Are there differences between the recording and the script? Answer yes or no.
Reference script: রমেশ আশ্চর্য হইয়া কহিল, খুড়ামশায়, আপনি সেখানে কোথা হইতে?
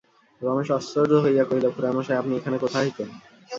yes